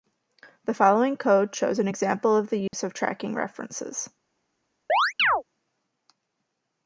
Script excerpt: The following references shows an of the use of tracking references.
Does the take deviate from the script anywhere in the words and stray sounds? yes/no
yes